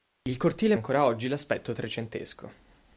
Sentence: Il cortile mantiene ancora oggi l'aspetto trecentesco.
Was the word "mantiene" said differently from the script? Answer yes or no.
yes